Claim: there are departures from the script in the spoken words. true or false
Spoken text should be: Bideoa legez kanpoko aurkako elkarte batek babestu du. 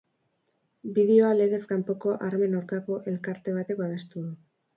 true